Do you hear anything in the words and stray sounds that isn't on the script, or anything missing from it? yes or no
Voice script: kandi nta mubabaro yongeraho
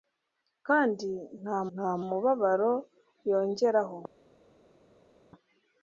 yes